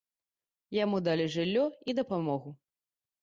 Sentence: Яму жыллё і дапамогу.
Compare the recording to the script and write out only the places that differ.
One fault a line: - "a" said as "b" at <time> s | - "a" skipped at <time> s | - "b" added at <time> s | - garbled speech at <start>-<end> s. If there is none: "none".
- "далі" added at 1.1 s